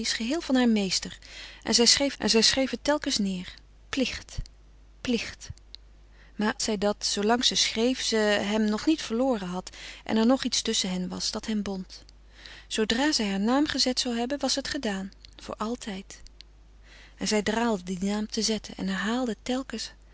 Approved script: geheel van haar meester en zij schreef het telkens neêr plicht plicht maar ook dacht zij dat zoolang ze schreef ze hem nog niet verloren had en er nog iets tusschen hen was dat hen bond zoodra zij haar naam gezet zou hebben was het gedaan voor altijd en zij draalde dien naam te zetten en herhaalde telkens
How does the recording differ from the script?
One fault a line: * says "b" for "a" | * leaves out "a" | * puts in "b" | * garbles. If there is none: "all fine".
* puts in "en zij schreef"
* leaves out "ook dacht"